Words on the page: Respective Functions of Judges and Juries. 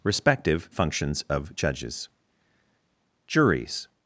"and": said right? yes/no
no